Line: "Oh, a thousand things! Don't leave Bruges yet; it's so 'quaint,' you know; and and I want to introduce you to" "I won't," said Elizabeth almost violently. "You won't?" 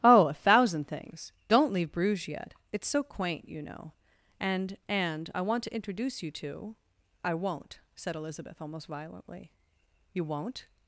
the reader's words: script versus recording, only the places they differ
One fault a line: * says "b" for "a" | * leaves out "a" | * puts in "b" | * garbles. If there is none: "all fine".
all fine